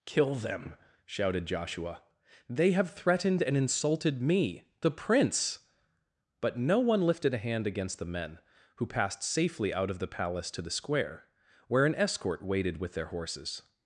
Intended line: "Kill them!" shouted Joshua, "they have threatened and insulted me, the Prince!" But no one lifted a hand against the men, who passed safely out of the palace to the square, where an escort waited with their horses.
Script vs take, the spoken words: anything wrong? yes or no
no